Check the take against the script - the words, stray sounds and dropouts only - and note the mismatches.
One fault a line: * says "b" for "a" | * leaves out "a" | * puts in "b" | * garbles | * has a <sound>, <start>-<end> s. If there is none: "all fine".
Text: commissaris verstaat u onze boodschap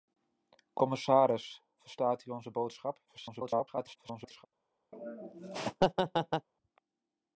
* garbles
* has a laugh, 4.9-6.5 s